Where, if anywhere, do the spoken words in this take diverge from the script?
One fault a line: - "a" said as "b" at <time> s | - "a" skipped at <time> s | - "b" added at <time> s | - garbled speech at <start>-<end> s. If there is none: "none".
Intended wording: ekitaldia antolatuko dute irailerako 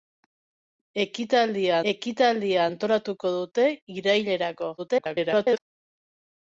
- "ekitaldia" added at 1.9 s
- garbled speech at 4.8-5.6 s